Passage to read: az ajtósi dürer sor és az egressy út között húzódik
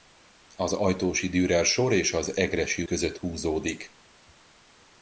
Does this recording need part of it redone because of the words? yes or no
yes